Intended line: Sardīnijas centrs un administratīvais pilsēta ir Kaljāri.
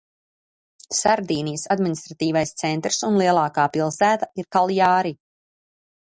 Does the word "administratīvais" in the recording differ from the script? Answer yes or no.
yes